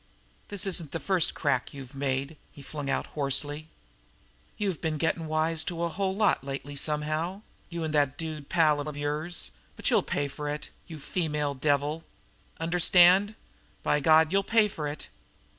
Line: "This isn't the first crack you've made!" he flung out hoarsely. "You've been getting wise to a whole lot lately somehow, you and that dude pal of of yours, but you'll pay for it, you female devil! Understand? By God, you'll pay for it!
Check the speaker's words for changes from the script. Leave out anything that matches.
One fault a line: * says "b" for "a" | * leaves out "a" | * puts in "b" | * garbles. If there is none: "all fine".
all fine